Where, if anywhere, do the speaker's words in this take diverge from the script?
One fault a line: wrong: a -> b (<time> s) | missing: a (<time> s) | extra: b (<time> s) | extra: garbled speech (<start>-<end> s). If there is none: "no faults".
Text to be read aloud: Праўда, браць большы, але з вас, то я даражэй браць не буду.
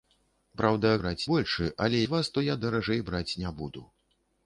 no faults